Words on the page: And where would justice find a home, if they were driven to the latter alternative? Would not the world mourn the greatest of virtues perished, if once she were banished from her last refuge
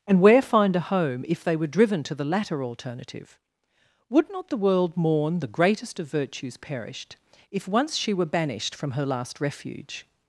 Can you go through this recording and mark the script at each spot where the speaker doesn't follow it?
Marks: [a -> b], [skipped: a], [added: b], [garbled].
And where [skipped: would justice] find a home, if they were driven to the latter alternative? Would not the world mourn the greatest of virtues perished, if once she were banished from her last refuge